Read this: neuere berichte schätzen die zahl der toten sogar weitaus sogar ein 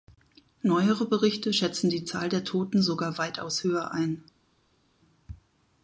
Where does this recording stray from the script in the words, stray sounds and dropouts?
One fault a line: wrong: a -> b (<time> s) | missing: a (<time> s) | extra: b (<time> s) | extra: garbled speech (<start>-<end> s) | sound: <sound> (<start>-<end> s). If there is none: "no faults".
wrong: sogar -> höher (3.6 s)